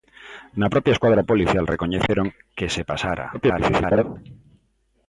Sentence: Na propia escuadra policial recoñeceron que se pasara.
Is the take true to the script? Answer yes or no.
no